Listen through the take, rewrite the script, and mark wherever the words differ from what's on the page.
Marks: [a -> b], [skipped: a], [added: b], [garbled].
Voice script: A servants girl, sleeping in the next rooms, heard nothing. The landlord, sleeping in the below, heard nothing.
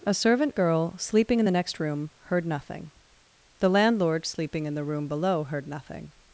A [servants -> servant] girl, sleeping in the next [rooms, -> room] heard nothing. The landlord, sleeping in the [added: room] below, heard nothing.